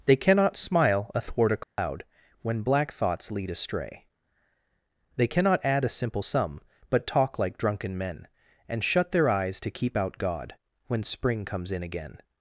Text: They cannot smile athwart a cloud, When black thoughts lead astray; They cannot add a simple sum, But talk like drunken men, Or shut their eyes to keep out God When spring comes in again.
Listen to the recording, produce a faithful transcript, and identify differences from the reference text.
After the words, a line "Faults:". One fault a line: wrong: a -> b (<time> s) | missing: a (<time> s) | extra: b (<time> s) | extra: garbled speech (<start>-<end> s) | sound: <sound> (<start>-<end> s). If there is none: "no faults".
They cannot smile athwart a cloud, When black thoughts lead astray; They cannot add a simple sum, But talk like drunken men, And shut their eyes to keep out God When spring comes in again.
Faults:
sound: dropout (1.6-1.8 s)
wrong: Or -> And (8.7 s)